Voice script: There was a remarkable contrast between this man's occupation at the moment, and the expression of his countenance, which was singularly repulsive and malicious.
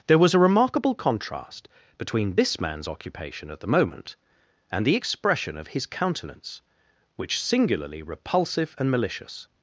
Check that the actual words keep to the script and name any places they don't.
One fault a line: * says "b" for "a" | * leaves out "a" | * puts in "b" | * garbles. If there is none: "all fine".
* leaves out "was"